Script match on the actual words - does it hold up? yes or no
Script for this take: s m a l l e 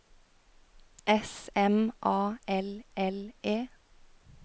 yes